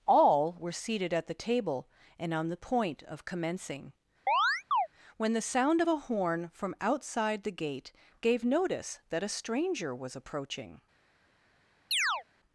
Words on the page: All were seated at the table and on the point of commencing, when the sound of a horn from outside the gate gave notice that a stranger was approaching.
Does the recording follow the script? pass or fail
pass